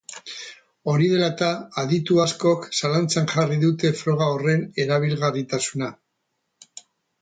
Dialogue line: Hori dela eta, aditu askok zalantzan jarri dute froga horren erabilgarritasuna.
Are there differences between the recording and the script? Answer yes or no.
no